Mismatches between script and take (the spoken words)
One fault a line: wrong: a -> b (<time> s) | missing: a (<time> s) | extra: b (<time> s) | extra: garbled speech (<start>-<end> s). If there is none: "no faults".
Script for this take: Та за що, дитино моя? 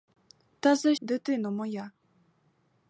missing: що (0.9 s)